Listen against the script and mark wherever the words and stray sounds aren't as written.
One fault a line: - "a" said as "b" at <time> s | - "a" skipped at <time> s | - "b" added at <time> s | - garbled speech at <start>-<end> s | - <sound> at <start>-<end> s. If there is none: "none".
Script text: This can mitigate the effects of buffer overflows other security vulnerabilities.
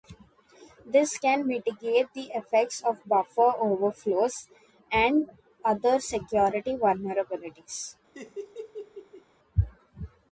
- "and" added at 4.9 s
- laugh at 8.1-9.2 s